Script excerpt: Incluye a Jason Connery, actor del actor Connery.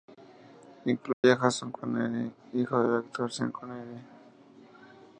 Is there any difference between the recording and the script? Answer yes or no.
yes